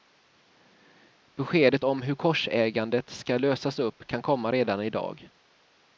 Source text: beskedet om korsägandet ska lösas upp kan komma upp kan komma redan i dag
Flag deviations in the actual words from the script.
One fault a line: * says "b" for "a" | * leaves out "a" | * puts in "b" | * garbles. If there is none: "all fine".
* puts in "hur"
* leaves out "upp kan komma"